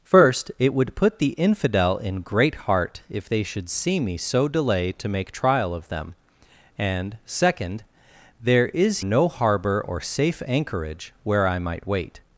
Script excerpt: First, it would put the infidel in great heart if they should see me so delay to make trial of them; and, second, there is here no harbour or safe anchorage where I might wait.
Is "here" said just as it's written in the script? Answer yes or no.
no